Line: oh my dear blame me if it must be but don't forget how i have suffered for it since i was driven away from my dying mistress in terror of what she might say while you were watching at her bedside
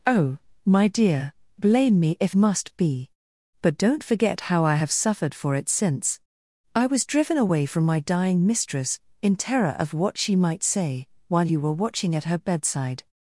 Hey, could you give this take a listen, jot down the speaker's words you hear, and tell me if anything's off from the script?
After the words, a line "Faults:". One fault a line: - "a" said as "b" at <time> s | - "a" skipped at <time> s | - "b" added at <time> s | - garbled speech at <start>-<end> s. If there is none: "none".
oh my dear blame me if must be but don't forget how i have suffered for it since i was driven away from my dying mistress in terror of what she might say while you were watching at her bedside
Faults:
- "it" skipped at 2.3 s